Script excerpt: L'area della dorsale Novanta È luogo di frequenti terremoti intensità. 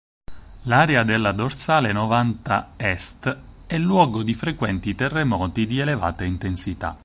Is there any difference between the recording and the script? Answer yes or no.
yes